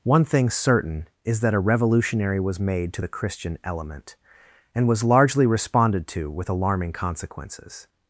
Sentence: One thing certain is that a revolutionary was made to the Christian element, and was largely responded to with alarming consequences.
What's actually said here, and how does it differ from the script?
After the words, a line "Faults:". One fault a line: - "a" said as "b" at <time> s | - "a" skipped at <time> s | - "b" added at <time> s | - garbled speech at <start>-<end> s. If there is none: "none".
One thing certain is that a revolutionary was made to the Christian element, and was largely responded to with alarming consequences.
Faults:
none